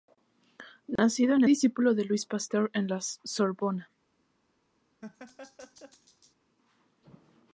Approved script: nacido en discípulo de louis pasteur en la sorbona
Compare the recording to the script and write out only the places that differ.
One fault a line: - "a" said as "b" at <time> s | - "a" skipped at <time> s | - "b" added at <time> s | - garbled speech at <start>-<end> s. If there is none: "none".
none